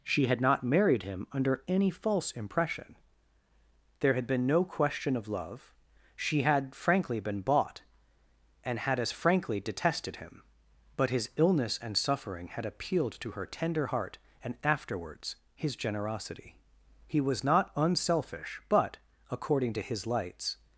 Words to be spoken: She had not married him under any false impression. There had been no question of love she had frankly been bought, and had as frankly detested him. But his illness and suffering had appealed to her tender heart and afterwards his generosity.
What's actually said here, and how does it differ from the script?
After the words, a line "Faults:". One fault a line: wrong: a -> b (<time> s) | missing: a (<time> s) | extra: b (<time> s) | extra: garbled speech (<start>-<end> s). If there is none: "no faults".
She had not married him under any false impression. There had been no question of love she had frankly been bought, and had as frankly detested him. But his illness and suffering had appealed to her tender heart and afterwards his generosity. He was not unselfish, but, according to his lights
Faults:
extra: He was not unselfish but according to his lights (17.1 s)